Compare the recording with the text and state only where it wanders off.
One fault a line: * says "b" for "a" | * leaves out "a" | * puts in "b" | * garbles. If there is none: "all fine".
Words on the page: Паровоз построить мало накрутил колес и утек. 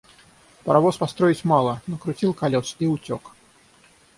all fine